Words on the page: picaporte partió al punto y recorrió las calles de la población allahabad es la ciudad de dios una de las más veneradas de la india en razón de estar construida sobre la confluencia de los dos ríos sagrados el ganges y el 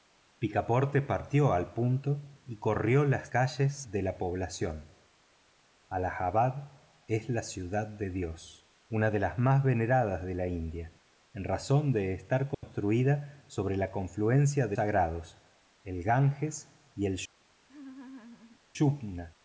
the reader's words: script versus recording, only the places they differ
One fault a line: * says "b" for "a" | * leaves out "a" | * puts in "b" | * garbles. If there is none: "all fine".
* leaves out "los dos ríos"